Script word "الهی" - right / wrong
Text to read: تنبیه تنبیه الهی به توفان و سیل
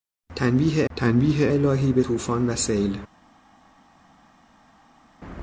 right